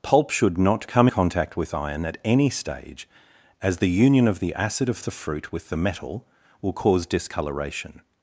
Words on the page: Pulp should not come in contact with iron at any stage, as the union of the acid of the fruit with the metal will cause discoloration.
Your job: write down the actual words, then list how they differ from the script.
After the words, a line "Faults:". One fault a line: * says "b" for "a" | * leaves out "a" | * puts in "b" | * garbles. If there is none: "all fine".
Pulp should not come contact with iron at any stage, as the union of the acid of the fruit with the metal will cause discoloration.
Faults:
* leaves out "in"